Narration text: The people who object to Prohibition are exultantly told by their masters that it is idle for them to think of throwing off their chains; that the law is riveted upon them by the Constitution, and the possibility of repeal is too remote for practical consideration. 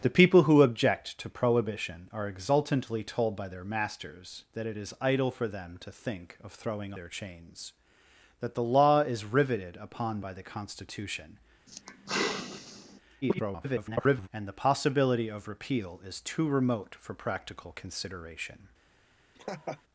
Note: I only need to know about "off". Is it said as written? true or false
false